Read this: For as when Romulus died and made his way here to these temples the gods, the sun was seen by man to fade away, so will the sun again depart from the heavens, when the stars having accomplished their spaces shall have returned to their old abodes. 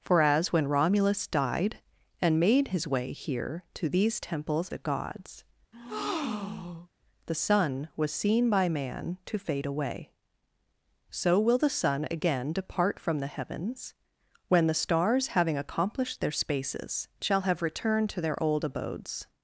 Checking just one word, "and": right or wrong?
right